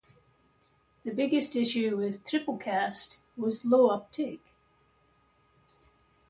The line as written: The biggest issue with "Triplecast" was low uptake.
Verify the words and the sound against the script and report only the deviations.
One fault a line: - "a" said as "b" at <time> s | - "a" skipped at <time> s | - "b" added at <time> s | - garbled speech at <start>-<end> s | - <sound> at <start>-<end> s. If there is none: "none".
none